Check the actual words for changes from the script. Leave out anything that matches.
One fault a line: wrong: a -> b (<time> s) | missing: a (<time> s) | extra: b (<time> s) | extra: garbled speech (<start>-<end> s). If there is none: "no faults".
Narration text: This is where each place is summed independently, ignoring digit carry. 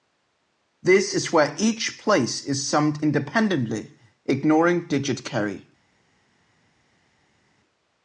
no faults